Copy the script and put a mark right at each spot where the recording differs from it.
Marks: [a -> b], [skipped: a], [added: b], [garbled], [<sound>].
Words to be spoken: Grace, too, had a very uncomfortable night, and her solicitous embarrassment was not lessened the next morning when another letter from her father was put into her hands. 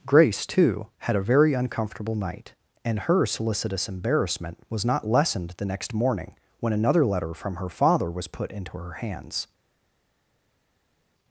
Grace, too, had a very uncomfortable night, and her solicitous embarrassment was not lessened the next morning when another letter from her father was put into her hands.